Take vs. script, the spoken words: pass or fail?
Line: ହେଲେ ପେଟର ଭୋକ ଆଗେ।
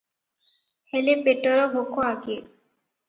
pass